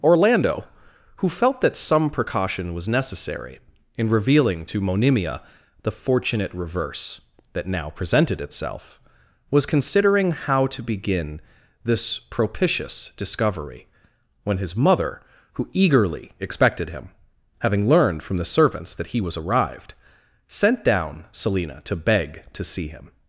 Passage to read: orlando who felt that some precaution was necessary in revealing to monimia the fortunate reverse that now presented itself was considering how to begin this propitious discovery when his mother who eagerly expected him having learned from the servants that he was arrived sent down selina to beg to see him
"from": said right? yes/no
yes